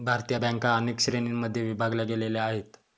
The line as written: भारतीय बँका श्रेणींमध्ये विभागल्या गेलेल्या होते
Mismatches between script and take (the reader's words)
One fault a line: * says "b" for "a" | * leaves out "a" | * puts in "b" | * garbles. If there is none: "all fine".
* puts in "अनेक"
* says "आहेत" for "होते"